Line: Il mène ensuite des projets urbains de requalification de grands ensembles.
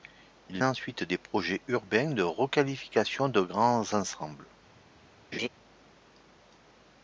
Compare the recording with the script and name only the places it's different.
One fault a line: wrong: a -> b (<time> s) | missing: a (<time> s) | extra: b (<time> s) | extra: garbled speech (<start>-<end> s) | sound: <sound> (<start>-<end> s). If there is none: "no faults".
missing: mène (0.6 s)
sound: laugh (5.3-5.5 s)